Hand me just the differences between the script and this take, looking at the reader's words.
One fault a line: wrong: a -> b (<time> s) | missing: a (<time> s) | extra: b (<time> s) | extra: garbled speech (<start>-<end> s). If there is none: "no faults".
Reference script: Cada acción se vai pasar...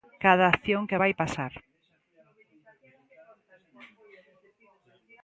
wrong: se -> que (0.9 s)